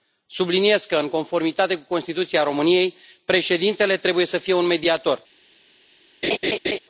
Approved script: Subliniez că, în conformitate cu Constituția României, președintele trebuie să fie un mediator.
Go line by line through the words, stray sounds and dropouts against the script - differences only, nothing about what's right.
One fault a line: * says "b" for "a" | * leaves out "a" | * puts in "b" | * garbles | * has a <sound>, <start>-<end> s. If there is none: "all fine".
* has a laugh, 6.2-6.8 s